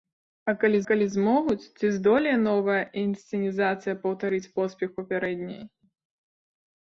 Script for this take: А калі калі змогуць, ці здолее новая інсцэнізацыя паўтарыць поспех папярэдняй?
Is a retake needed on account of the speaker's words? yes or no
no